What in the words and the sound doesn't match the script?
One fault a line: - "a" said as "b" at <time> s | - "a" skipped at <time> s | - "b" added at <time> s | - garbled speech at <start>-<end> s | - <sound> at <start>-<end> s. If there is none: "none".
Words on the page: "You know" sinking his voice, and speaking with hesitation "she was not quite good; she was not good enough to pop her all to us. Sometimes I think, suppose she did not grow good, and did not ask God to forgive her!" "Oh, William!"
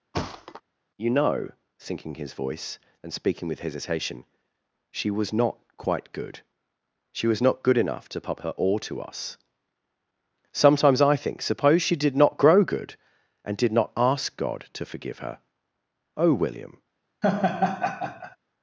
- thud at 0.1-0.6 s
- laugh at 17.2-18.4 s